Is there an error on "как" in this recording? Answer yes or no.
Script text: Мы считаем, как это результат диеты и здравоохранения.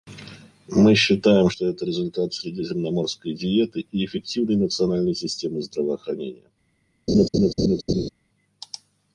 yes